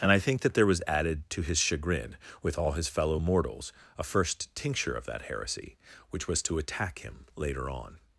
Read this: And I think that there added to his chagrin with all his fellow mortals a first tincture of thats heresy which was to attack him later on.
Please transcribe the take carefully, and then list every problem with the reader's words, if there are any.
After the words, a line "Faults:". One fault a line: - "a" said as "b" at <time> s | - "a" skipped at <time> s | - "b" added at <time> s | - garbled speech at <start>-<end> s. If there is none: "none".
And I think that there was added to his chagrin with all his fellow mortals a first tincture of that heresy which was to attack him later on.
Faults:
- "was" added at 0.7 s
- "thats" said as "that" at 5.1 s